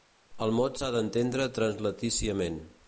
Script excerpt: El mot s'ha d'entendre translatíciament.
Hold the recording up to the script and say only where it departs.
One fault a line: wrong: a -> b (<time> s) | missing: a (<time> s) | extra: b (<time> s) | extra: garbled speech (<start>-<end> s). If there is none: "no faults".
no faults